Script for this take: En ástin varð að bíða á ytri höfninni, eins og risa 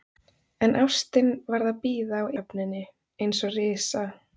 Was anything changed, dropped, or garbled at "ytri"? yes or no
yes